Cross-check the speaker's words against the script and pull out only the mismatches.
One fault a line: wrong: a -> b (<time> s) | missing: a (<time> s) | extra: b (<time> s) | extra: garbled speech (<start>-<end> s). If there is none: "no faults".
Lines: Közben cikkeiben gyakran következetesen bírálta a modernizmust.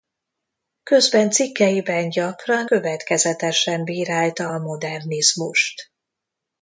no faults